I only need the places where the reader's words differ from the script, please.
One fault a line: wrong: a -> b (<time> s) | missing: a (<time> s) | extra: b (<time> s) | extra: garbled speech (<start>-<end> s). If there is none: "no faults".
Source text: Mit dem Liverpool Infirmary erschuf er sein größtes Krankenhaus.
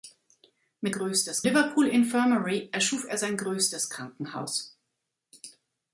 wrong: dem -> größtes (0.9 s)